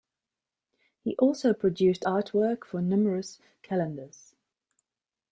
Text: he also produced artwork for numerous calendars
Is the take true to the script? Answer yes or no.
yes